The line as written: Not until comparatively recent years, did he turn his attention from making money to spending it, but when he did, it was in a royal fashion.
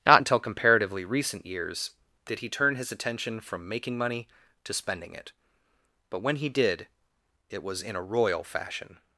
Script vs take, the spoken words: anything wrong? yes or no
no